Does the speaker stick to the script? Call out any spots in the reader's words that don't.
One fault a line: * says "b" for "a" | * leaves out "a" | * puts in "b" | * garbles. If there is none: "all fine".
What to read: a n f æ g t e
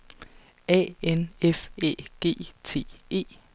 all fine